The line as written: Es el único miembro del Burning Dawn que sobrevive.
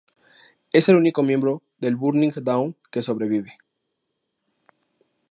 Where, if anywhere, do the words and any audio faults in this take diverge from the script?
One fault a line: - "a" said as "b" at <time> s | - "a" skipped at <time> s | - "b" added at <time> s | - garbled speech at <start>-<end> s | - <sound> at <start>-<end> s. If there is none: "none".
none